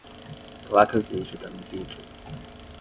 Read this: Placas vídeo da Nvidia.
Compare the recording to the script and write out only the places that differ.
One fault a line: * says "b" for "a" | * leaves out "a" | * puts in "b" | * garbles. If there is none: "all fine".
all fine